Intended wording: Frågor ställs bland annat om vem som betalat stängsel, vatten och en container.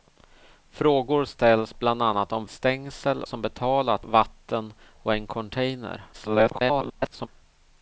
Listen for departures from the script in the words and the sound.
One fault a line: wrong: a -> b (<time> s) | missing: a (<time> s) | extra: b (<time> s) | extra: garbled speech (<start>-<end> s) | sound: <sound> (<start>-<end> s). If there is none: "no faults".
wrong: vem -> stängsel (2.5 s)
missing: stängsel (4.1 s)
extra: garbled speech (6.1-7.3 s)